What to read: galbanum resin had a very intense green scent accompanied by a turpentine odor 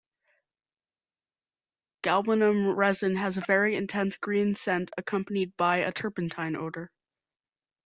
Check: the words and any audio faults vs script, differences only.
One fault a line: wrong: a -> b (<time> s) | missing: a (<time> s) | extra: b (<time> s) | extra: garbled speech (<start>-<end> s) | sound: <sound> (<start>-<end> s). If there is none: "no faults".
wrong: had -> has (3.1 s)